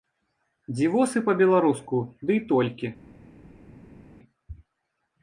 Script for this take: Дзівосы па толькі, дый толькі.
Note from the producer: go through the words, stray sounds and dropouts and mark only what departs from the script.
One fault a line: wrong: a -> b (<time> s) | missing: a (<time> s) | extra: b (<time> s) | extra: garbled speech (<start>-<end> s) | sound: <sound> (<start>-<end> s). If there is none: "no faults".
wrong: толькі -> беларуску (1.4 s)